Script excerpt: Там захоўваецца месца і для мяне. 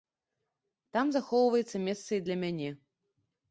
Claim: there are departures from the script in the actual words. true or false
false